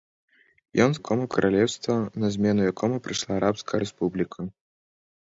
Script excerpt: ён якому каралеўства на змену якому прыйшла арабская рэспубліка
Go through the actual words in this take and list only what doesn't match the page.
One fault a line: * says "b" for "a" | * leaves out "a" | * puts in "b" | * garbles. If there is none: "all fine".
all fine